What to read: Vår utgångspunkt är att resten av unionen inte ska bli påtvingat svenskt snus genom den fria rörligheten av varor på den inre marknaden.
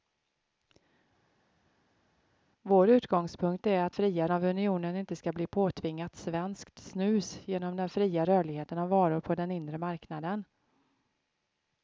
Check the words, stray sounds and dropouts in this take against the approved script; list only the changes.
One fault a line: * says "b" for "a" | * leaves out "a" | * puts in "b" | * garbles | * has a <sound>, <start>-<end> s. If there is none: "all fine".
* says "fria" for "resten"